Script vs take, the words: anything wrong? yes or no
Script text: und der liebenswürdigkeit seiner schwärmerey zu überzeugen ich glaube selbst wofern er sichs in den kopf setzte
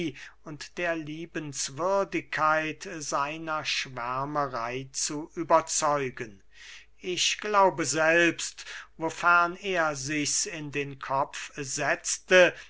no